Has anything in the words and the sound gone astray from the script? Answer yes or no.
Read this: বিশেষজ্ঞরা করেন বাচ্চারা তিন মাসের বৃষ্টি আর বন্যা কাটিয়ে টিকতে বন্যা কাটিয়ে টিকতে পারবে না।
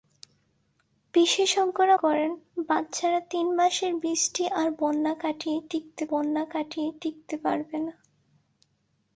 no